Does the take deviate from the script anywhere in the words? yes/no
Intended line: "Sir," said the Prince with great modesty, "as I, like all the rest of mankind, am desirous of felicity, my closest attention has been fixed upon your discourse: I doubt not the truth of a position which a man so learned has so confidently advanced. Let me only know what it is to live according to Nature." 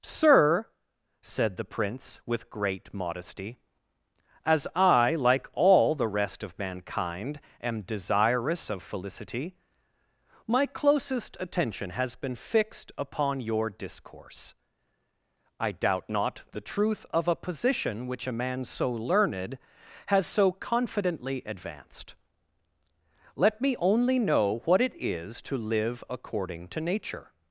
no